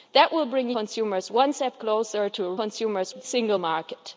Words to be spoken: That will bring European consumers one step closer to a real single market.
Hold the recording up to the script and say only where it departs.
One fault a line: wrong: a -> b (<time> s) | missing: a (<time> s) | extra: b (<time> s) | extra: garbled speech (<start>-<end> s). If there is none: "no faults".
missing: European (0.7 s)
wrong: real -> consumers (2.5 s)